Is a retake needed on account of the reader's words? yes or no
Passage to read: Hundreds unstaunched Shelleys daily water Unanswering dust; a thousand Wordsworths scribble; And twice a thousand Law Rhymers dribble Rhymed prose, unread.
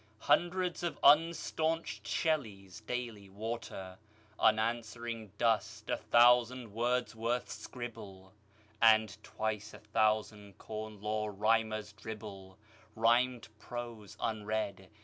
yes